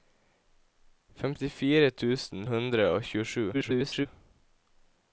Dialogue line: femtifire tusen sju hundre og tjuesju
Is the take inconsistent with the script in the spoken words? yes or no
yes